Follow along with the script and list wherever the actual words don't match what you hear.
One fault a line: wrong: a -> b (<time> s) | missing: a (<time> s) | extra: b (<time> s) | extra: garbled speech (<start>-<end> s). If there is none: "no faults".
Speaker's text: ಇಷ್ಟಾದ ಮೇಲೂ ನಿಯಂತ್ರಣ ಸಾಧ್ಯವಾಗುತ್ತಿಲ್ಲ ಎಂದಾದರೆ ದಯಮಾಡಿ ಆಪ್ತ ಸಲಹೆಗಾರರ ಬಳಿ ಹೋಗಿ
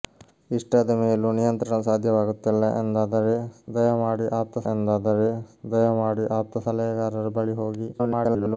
extra: ಎಂದಾದರೆ ದಯಮಾಡಿ ಆಪ್ತ (4.7 s)
extra: garbled speech (7.9-8.6 s)